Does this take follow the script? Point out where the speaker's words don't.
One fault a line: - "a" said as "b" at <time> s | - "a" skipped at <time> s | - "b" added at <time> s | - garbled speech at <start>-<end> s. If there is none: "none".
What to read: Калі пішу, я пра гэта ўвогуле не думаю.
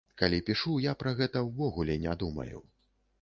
none